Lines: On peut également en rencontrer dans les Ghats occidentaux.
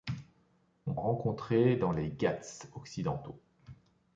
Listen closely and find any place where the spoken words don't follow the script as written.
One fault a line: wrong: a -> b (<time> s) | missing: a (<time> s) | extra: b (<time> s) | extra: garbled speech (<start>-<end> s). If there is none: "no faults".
missing: peut également (0.9 s)